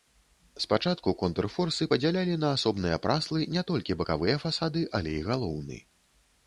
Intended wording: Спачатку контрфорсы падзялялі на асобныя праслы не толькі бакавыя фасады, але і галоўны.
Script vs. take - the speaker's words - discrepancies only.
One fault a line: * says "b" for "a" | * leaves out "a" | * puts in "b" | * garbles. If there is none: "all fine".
all fine